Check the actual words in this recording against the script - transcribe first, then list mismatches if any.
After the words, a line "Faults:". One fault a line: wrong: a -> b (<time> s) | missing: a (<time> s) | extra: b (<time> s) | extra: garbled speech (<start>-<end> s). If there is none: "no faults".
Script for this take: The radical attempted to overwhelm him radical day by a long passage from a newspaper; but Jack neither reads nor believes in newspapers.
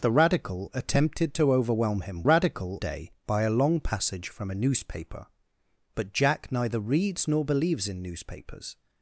The radical attempted to overwhelm him radical day by a long passage from a newspaper; but Jack neither reads nor believes in newspapers.
Faults:
no faults